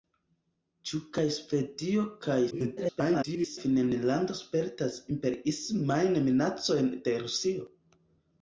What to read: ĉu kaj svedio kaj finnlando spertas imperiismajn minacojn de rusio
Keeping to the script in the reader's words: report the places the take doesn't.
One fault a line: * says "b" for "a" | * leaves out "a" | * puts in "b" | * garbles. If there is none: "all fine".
* garbles